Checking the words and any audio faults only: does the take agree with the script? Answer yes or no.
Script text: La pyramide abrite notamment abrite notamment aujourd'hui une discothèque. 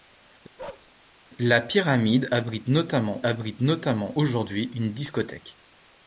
no